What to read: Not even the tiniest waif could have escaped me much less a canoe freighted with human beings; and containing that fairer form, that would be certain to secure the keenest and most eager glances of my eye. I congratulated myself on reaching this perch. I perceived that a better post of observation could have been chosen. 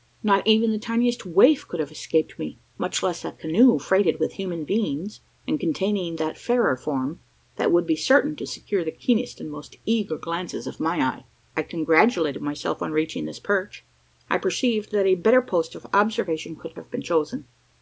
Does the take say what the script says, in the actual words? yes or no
yes